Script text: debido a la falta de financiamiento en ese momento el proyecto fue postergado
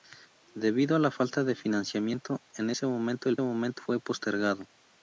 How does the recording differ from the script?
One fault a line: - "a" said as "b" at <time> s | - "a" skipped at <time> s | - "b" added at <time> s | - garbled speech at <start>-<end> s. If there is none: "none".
- "proyecto" said as "momento" at 3.4 s